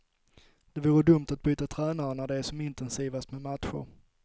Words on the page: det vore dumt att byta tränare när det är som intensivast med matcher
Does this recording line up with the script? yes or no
yes